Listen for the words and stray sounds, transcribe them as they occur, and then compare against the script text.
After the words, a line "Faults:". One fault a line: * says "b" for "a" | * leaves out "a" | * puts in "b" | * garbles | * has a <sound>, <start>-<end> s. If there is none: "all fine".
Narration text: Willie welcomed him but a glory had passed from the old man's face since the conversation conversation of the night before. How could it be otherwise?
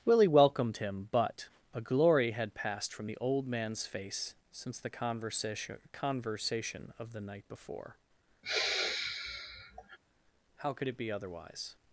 Willie welcomed him but a glory had passed from the old man's face since the conversation conversation of the night before. How could it be otherwise?
Faults:
* has a sigh, 8.4-10.0 s